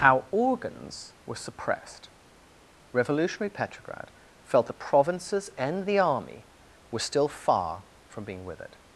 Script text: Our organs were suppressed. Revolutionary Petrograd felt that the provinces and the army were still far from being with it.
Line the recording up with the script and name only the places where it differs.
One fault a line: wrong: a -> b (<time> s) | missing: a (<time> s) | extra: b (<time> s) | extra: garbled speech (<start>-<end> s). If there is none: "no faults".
missing: that (4.7 s)